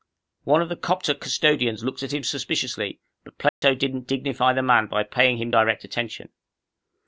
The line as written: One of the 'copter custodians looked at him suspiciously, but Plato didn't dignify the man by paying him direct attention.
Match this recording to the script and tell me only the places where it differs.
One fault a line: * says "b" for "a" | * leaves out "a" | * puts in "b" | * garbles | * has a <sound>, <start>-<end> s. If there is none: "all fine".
* has a dropout, 3.5-3.6 s